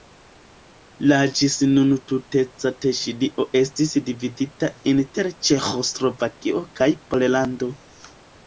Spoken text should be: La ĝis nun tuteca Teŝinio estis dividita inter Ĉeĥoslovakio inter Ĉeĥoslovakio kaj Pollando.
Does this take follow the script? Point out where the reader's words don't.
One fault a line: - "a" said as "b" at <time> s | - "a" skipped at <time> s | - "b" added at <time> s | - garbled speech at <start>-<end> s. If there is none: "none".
- "inter Ĉeĥoslovakio" skipped at 6.6 s